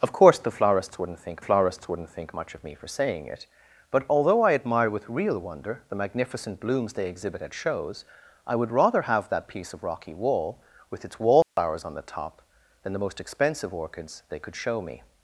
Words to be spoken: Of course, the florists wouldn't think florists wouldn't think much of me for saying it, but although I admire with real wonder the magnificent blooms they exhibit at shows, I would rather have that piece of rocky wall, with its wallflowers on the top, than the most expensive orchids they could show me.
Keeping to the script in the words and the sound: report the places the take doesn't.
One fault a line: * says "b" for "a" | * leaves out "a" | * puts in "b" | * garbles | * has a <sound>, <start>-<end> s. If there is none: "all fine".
* has a dropout, 11.4-11.6 s